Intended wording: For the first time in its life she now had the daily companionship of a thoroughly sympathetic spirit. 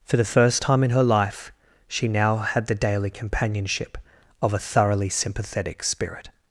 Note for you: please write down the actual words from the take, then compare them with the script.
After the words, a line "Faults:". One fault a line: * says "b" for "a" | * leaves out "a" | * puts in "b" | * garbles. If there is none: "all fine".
For the first time in her life she now had the daily companionship of a thoroughly sympathetic spirit.
Faults:
* says "her" for "its"